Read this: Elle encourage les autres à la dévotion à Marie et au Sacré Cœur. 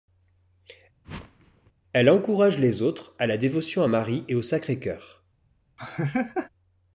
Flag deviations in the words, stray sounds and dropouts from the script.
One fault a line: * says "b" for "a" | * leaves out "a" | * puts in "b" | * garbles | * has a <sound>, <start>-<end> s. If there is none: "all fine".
* has a whoosh, 1.0-1.7 s
* has a laugh, 5.8-6.5 s